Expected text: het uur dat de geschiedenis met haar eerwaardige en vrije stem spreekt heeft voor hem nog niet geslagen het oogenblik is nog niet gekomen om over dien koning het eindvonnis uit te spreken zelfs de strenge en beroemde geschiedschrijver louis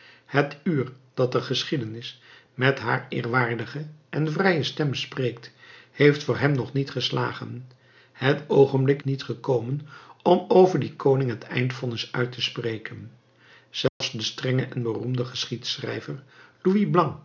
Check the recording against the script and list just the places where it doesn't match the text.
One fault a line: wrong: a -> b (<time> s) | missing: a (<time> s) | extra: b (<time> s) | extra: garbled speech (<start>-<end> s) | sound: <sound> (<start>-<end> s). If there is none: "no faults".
missing: is nog (9.0 s)
sound: dropout (13.9-14.0 s)